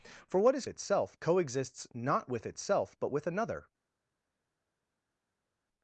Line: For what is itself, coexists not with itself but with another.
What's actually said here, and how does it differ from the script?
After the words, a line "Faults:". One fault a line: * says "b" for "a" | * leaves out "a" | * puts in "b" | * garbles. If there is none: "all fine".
For what is itself, coexists not with itself but with another.
Faults:
all fine